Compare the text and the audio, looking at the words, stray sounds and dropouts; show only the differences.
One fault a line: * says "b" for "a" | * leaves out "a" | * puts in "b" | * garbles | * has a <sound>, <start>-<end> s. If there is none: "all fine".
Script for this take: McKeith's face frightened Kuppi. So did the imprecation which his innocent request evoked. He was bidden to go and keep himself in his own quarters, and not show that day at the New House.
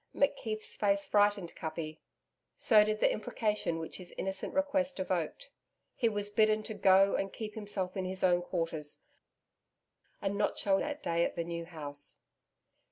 all fine